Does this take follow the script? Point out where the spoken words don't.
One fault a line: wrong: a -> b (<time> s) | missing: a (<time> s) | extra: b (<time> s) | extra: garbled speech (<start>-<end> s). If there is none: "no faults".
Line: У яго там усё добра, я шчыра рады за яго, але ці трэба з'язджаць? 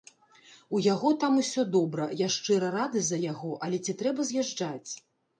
no faults